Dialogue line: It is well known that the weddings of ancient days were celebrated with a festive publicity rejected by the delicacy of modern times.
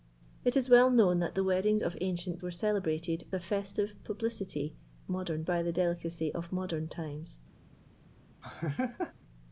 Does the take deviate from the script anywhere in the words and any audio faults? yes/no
yes